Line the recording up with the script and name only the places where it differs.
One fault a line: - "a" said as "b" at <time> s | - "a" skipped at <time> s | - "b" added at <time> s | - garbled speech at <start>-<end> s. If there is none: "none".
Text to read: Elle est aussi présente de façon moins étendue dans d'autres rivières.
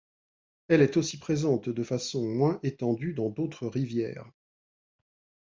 none